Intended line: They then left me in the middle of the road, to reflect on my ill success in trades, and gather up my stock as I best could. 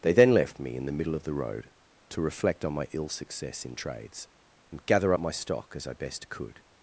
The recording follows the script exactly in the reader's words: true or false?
true